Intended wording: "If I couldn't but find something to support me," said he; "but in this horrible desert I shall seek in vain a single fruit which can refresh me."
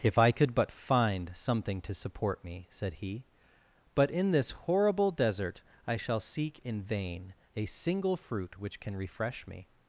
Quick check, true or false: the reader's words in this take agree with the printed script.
false